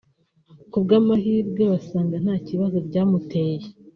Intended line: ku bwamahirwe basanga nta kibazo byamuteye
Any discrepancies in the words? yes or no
no